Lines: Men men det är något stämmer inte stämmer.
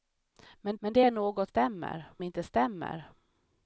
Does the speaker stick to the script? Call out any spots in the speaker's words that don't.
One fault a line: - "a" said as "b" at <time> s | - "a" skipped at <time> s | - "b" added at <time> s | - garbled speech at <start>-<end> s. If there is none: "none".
none